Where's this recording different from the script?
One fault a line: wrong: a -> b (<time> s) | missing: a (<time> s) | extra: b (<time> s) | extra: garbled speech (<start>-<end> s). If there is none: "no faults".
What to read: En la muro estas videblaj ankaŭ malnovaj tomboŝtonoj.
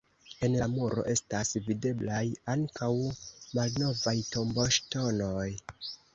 no faults